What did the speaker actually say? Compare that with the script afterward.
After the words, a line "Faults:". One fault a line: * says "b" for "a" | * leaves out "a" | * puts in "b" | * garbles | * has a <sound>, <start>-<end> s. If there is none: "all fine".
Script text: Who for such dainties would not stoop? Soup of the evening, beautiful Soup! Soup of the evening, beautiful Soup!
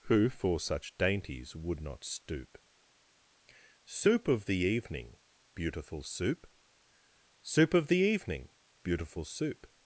Who for such dainties would not stoop? Soup of the evening, beautiful Soup! Soup of the evening, beautiful Soup!
Faults:
all fine